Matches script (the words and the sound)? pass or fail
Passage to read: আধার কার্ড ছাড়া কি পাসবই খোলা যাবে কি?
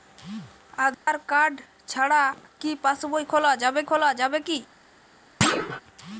fail